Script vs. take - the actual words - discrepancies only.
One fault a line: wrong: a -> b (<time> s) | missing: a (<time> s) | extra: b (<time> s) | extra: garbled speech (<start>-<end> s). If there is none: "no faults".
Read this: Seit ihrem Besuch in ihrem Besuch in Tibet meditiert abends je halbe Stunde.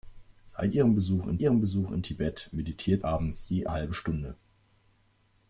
no faults